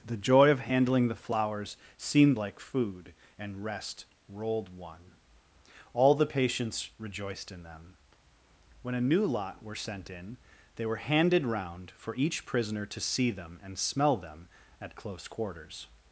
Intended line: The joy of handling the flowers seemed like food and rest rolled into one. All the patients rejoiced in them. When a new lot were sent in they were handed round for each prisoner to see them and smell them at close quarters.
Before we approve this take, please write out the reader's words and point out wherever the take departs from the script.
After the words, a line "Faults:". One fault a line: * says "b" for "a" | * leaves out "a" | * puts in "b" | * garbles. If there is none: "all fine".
The joy of handling the flowers seemed like food and rest rolled one. All the patients rejoiced in them. When a new lot were sent in they were handed round for each prisoner to see them and smell them at close quarters.
Faults:
* leaves out "into"